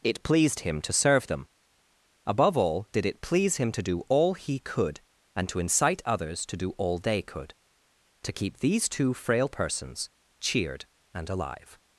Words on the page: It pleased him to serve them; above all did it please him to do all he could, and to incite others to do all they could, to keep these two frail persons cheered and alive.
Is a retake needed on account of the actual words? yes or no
no